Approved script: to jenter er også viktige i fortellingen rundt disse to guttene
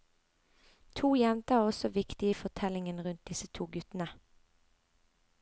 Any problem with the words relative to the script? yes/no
no